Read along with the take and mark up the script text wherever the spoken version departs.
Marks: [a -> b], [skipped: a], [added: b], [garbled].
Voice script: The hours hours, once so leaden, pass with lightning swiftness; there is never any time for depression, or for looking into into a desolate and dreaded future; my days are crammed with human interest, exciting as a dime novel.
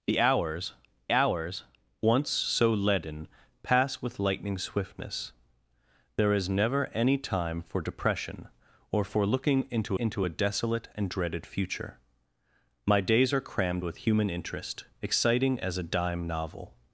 The hours hours, once so leaden, pass with lightning swiftness; there is never any time for depression, or for looking into into a desolate and dreaded future; my days are crammed with human interest, exciting as a dime novel.